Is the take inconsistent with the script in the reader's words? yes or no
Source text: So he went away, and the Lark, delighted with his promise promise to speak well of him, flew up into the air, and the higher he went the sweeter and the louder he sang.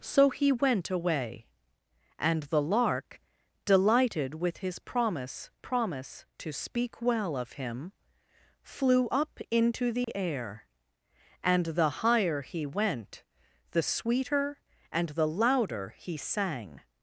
no